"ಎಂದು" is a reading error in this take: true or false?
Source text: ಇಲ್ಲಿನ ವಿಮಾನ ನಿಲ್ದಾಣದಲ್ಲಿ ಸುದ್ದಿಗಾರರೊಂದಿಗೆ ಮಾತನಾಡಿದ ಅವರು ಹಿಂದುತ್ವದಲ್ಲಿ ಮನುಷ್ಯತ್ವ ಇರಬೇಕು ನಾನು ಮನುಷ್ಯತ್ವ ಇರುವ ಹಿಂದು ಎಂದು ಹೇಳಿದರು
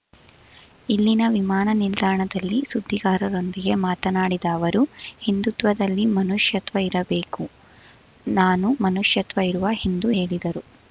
true